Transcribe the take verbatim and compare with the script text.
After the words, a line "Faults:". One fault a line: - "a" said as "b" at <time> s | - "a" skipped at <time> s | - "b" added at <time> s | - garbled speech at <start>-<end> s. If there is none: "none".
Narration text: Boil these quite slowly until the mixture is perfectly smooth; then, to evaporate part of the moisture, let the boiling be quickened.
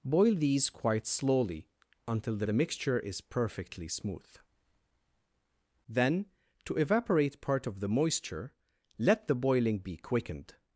Boil these quite slowly until the the mixture is perfectly smooth; then, to evaporate part of the moisture, let the boiling be quickened.
Faults:
- "the" added at 2.4 s